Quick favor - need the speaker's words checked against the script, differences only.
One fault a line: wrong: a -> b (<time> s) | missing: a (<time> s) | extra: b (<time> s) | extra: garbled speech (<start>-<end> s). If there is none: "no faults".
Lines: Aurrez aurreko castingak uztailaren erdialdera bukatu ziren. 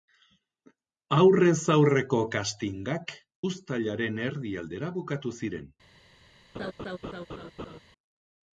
no faults